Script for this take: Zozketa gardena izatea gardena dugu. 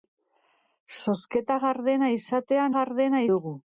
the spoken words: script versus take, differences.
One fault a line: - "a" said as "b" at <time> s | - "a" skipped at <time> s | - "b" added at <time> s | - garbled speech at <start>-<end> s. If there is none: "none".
none